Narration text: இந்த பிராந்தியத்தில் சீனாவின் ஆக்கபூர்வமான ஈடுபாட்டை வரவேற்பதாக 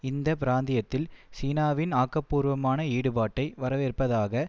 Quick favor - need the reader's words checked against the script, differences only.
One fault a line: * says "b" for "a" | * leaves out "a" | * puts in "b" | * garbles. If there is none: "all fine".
all fine